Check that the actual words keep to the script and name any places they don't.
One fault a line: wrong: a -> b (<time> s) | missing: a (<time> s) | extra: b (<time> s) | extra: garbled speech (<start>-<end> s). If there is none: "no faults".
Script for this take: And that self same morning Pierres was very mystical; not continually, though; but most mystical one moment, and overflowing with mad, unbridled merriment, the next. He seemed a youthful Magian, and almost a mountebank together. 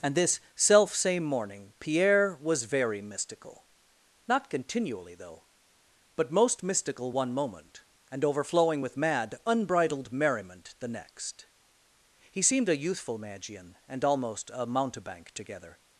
wrong: that -> this (0.1 s)
wrong: Pierres -> Pierre (1.8 s)